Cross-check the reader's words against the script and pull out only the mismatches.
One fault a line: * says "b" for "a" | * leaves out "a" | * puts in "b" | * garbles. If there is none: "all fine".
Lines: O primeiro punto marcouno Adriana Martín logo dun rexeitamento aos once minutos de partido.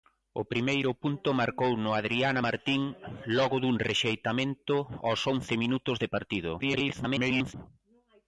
* garbles